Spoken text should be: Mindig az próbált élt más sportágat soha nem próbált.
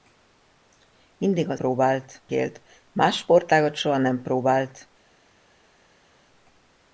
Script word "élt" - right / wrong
right